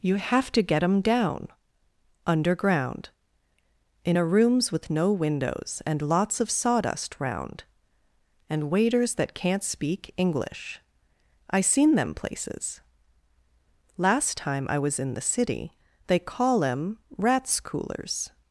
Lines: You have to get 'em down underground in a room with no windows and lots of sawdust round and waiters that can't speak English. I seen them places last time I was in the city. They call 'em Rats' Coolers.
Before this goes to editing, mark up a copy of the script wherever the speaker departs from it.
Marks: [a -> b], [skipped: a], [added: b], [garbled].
You have to get 'em down underground in a [room -> rooms] with no windows and lots of sawdust round and waiters that can't speak English. I seen them places last time I was in the city. They call 'em Rats' Coolers.